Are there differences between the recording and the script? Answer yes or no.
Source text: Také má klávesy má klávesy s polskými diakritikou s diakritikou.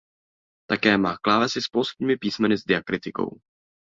yes